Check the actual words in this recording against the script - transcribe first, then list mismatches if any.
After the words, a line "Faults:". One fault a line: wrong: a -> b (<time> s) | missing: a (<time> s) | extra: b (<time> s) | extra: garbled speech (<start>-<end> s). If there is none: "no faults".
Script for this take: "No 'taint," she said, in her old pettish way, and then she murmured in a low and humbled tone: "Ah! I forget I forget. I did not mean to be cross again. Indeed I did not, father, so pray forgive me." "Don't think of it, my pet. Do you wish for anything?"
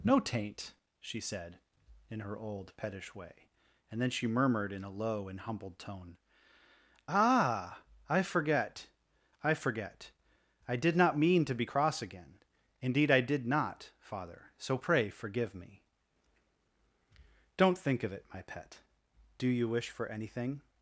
"No 'taint," she said, in her old pettish way, and then she murmured in a low and humbled tone: "Ah! I forget I forget. I did not mean to be cross again. Indeed I did not, father, so pray forgive me." "Don't think of it, my pet. Do you wish for anything?"
Faults:
no faults